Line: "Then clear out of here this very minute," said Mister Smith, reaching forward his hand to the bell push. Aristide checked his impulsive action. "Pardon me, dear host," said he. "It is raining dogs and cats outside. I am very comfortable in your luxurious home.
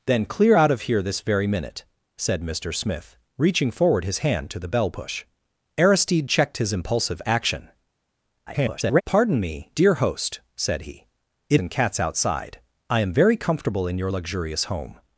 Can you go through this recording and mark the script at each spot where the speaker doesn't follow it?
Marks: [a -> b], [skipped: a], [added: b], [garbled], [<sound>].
"Then clear out of here this very minute," said Mister Smith, reaching forward his hand to the bell push. Aristide checked his impulsive action. [garbled] "Pardon me, dear host," said he. "It [skipped: is raining dogs] and cats outside. I am very comfortable in your luxurious home.